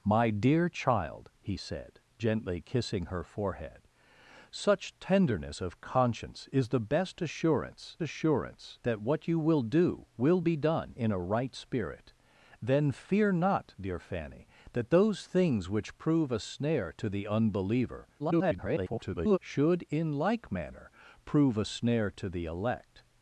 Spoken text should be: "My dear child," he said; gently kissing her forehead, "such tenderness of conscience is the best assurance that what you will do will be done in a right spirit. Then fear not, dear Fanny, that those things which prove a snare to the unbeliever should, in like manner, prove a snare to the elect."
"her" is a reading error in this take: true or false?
false